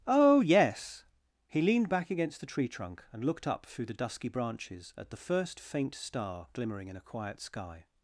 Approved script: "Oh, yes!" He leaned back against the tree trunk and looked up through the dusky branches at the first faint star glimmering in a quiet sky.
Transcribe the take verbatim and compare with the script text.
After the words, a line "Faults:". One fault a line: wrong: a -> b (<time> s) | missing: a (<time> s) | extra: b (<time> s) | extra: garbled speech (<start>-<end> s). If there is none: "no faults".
"Oh, yes!" He leaned back against the tree trunk and looked up through the dusky branches at the first faint star glimmering in a quiet sky.
Faults:
no faults